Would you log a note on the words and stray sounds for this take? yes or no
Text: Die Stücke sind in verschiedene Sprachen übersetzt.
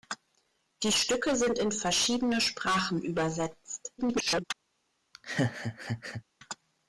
yes